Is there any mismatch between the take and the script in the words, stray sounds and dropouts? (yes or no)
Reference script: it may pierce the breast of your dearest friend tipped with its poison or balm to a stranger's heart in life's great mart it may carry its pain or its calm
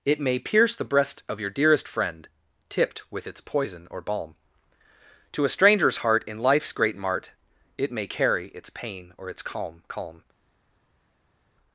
yes